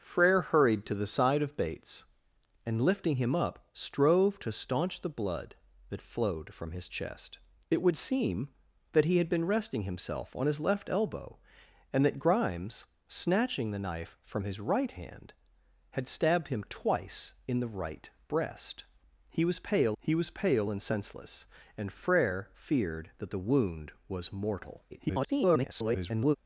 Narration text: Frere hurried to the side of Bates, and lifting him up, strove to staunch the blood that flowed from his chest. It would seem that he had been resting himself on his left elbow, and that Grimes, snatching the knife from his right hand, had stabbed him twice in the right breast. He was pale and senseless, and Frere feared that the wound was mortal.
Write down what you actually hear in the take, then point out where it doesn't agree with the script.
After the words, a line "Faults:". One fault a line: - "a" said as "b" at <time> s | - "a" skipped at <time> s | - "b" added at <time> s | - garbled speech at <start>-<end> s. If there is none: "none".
Frere hurried to the side of Bates, and lifting him up, strove to staunch the blood that flowed from his chest. It would seem that he had been resting himself on his left elbow, and that Grimes, snatching the knife from his right hand, had stabbed him twice in the right breast. He was pale he was pale and senseless, and Frere feared that the wound was mortal. [garbled]
Faults:
- "he was pale" added at 20.0 s
- garbled speech at 24.9-26.4 s